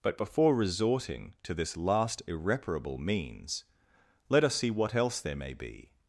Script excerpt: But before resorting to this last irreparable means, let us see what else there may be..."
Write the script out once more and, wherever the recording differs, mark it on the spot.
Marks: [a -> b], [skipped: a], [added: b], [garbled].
But before resorting to this last irreparable means, let us see what else there may be..."